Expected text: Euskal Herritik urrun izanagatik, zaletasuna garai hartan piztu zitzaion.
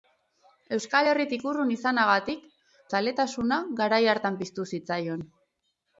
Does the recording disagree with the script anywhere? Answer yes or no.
no